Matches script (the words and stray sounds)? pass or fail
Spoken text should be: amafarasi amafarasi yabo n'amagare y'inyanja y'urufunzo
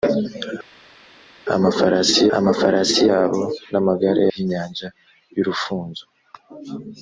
pass